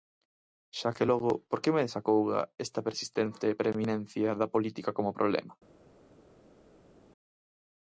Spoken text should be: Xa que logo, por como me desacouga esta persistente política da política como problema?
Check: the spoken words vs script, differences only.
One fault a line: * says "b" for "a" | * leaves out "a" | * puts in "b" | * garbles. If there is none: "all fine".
* says "que" for "como"
* says "preeminencia" for "política"